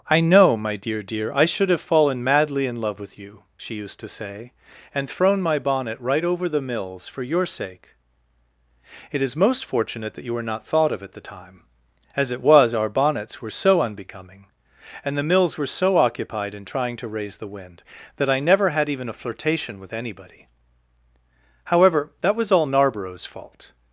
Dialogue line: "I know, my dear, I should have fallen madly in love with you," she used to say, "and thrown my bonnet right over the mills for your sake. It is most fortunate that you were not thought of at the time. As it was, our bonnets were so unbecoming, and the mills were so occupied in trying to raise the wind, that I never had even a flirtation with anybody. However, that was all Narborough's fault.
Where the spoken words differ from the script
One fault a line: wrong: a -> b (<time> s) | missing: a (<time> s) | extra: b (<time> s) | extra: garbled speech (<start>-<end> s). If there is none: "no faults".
extra: dear (1.0 s)